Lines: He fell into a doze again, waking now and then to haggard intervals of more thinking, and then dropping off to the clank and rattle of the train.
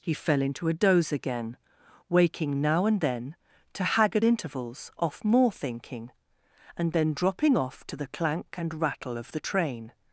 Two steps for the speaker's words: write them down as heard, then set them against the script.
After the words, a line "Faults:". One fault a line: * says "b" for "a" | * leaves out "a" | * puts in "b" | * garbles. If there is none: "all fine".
He fell into a doze again, waking now and then to haggard intervals off more thinking, and then dropping off to the clank and rattle of the train.
Faults:
* says "off" for "of"